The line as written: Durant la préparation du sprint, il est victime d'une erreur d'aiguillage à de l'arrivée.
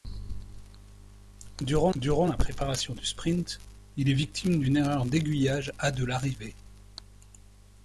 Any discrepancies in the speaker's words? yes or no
yes